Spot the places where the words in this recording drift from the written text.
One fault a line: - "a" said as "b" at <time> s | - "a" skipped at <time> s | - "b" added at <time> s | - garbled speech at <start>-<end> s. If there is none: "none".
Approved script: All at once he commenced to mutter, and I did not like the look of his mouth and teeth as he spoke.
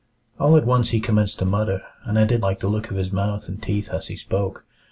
- "not" skipped at 2.4 s